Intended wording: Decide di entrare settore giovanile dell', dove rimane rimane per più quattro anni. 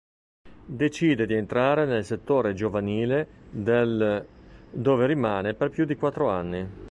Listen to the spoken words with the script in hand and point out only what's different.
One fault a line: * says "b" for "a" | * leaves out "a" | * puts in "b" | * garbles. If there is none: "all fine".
* puts in "nel"
* leaves out "rimane"
* puts in "di"